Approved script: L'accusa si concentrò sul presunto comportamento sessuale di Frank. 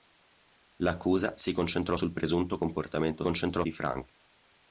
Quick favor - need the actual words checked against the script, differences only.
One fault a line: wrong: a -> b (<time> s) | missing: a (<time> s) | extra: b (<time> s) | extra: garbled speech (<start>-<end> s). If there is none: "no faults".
wrong: sessuale -> concentrò (3.2 s)